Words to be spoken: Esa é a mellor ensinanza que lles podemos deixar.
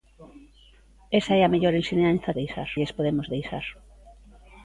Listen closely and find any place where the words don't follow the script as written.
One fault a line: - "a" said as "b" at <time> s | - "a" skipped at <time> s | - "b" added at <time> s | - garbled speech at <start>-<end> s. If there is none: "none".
- "que" said as "deixar" at 2.4 s